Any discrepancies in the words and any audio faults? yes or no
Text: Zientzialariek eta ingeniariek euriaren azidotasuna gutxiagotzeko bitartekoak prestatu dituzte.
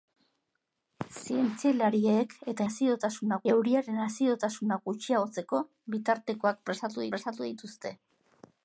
yes